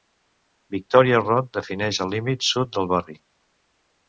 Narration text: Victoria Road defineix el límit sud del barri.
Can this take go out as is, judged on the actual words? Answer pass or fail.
pass